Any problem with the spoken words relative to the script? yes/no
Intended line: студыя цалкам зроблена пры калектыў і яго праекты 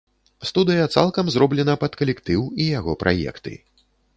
yes